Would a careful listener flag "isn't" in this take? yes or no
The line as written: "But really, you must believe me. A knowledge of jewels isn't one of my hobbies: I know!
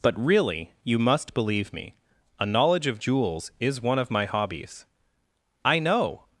yes